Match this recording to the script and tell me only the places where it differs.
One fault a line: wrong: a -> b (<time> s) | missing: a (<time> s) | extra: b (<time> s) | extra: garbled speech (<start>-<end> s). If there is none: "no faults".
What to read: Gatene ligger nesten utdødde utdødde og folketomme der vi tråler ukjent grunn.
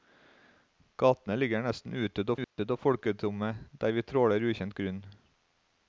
no faults